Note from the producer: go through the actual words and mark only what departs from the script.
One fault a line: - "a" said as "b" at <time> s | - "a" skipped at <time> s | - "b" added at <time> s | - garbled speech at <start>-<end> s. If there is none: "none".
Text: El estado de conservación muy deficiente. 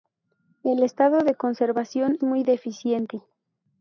none